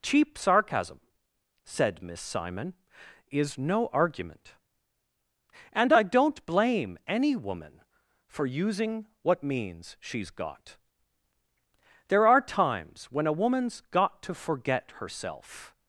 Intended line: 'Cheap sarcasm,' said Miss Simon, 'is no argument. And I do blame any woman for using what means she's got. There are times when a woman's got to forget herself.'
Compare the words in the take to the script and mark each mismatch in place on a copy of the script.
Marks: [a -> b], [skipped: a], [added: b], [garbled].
'Cheap sarcasm,' said Miss Simon, 'is no argument. And I [do -> don't] blame any woman for using what means she's got. There are times when a woman's got to forget herself.'